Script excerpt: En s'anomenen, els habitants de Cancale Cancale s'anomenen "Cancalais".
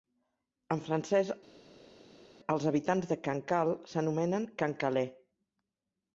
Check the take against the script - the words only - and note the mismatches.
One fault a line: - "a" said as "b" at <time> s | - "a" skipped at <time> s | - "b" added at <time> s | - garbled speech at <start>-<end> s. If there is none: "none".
- "s'anomenen" said as "francès" at 0.9 s
- "Cancale" skipped at 3.8 s